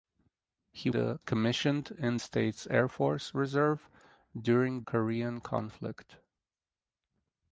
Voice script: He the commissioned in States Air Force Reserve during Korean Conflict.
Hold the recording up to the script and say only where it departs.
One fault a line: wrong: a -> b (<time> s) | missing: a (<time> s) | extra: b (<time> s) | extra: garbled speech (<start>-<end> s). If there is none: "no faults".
no faults